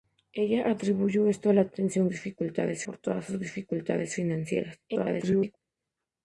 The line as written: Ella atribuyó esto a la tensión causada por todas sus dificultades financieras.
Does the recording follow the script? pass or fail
fail